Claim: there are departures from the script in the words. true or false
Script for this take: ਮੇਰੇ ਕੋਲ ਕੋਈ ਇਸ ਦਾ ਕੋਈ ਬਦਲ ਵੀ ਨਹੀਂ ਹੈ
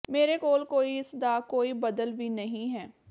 false